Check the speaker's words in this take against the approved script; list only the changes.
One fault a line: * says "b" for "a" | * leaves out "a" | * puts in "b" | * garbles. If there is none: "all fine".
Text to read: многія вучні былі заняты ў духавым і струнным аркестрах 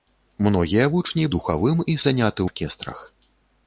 * leaves out "былі заняты ў"
* says "заняты" for "струнным"